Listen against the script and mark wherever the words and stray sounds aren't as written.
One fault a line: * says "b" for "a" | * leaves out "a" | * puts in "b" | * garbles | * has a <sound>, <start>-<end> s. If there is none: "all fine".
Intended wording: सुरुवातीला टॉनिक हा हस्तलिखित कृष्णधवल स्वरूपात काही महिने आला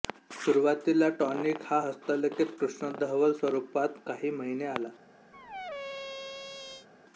* has a squeak, 5.3-6.9 s